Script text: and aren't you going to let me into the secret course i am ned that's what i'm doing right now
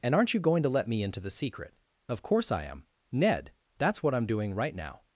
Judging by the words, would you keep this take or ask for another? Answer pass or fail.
fail